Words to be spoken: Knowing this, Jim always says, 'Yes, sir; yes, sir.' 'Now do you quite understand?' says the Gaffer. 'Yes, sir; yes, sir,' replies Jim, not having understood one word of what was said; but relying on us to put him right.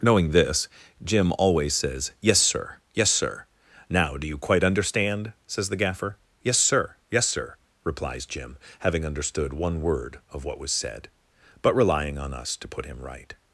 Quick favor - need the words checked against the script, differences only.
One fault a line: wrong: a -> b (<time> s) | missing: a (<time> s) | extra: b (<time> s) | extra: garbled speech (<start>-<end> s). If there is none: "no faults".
missing: not (8.6 s)